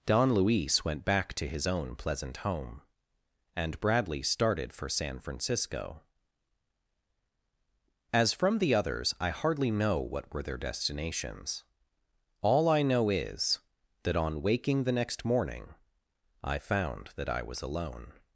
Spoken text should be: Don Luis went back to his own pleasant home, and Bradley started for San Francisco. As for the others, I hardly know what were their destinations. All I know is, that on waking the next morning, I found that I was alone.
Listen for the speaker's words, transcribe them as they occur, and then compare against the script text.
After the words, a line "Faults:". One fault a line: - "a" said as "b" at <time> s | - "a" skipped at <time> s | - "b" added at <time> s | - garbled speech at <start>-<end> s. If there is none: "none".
Don Luis went back to his own pleasant home, and Bradley started for San Francisco. As from the others, I hardly know what were their destinations. All I know is, that on waking the next morning, I found that I was alone.
Faults:
- "for" said as "from" at 8.3 s